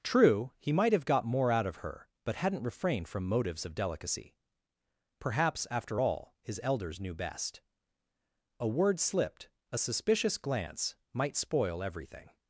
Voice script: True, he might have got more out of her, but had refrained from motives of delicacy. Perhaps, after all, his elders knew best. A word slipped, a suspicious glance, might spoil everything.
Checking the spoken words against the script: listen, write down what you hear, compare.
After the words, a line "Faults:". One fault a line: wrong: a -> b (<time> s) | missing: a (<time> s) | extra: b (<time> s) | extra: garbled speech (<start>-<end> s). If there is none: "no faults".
True, he might have got more out of her, but hadn't refrained from motives of delicacy. Perhaps, after all, his elders knew best. A word slipped, a suspicious glance, might spoil everything.
Faults:
wrong: had -> hadn't (2.4 s)